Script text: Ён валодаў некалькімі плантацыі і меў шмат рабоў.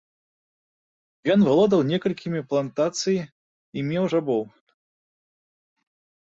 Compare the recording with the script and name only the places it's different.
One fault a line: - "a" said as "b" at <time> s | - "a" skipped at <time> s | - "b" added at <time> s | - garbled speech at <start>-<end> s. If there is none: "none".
- "шмат" skipped at 4.0 s